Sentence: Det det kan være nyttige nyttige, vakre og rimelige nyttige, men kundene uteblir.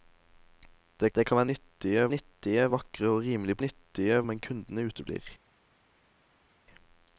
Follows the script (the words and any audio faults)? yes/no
yes